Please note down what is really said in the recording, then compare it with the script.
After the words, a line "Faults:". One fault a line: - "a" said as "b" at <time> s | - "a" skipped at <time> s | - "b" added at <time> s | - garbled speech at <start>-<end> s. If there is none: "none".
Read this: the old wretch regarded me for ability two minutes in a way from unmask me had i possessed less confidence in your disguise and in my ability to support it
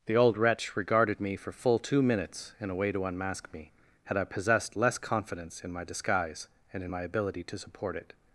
the old wretch regarded me for full two minutes in a way to unmask me had i possessed less confidence in my disguise and in my ability to support it
Faults:
- "ability" said as "full" at 1.5 s
- "from" said as "to" at 2.9 s
- "your" said as "my" at 5.7 s